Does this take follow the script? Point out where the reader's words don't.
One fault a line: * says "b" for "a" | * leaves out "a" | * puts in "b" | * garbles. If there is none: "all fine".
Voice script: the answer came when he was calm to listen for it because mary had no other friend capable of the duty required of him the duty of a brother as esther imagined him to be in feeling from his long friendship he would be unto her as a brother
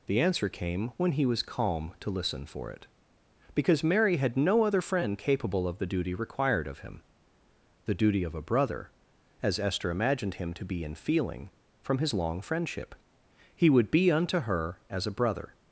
all fine